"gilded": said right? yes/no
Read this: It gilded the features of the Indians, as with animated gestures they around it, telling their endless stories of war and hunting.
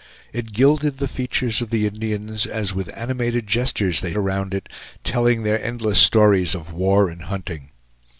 yes